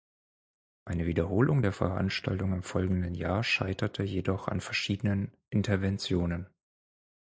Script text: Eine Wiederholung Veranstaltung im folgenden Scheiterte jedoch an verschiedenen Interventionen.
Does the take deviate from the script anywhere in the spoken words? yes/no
yes